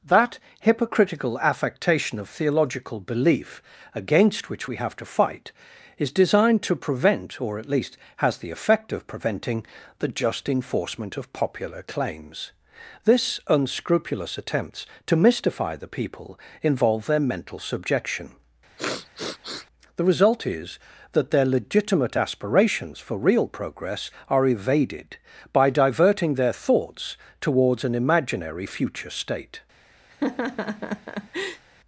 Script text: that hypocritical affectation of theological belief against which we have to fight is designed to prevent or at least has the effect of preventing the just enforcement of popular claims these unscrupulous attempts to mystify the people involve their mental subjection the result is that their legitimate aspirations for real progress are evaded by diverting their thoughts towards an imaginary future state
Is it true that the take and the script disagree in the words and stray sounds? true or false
true